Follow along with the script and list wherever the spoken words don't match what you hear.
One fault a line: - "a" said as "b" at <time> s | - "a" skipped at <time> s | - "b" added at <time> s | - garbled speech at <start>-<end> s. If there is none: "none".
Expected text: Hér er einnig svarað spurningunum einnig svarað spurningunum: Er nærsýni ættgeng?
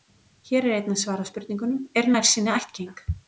- "einnig svarað spurningunum" skipped at 1.8 s